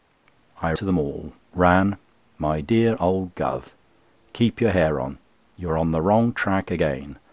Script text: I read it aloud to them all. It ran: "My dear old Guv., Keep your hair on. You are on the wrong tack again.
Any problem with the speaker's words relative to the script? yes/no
yes